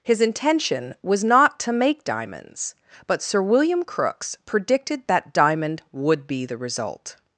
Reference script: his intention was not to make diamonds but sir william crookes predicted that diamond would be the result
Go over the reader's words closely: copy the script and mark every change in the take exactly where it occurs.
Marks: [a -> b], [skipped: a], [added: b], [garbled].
his intention was not to make diamonds but sir william crookes predicted that diamond would be the result